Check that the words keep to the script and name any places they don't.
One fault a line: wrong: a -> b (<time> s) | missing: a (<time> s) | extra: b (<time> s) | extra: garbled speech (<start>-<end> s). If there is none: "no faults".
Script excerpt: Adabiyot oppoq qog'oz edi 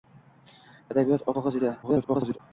missing: oppoq (1.3 s)
extra: garbled speech (1.8-2.4 s)